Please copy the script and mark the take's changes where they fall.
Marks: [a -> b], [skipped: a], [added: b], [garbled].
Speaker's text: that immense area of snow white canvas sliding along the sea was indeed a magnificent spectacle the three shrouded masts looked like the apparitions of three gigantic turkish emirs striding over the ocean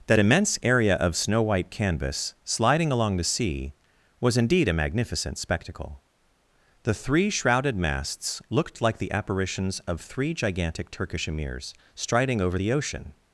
that immense area of snow white canvas sliding along the sea was indeed a magnificent spectacle the three shrouded masts looked like the apparitions of three gigantic turkish emirs striding over the ocean